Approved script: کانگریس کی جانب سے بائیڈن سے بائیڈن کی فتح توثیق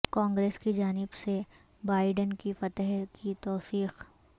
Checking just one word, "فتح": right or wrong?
wrong